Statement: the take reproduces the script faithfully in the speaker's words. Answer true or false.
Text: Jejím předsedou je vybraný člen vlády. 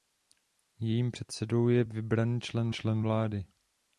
false